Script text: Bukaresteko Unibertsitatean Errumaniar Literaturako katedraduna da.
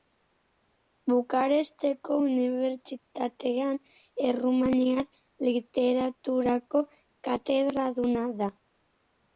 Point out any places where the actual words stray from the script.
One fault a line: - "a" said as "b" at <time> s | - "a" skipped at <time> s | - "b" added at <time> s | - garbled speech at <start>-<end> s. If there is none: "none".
none